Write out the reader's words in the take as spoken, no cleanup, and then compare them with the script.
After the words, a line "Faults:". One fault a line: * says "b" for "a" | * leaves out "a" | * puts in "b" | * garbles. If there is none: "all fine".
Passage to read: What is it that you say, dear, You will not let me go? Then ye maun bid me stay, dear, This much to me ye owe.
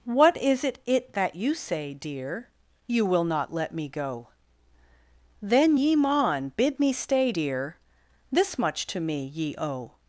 What is it it that you say, dear, You will not let me go? Then ye maun bid me stay, dear, This much to me ye owe.
Faults:
* puts in "it"